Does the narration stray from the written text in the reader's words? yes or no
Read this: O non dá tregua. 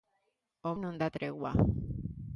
no